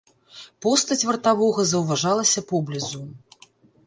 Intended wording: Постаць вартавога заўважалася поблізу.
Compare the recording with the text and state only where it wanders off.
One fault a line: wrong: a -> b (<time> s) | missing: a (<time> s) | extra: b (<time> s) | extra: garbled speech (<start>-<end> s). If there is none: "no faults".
no faults